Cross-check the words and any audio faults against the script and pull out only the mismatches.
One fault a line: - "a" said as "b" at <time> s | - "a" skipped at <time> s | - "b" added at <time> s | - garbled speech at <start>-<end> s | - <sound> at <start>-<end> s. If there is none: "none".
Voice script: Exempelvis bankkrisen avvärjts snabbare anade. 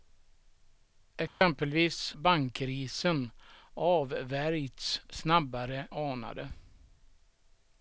- dropout at 1.3-1.4 s